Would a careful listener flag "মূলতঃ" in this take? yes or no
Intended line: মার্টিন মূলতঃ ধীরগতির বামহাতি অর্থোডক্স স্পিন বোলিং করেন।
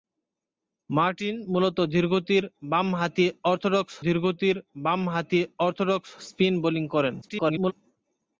no